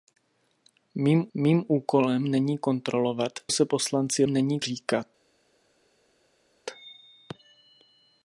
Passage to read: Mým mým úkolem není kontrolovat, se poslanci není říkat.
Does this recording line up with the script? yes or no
yes